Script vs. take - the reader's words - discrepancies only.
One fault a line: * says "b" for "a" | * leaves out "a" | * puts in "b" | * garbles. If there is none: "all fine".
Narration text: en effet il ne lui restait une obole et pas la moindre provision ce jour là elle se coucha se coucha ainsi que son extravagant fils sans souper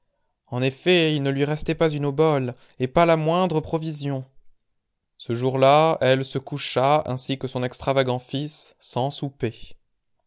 * puts in "pas"
* leaves out "se coucha"